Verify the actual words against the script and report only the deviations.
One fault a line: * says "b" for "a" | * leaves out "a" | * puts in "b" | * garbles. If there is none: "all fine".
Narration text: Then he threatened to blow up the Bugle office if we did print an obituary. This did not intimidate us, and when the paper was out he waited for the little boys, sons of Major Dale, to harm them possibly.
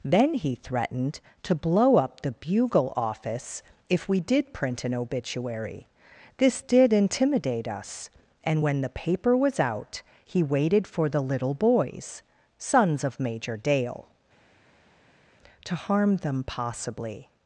* leaves out "not"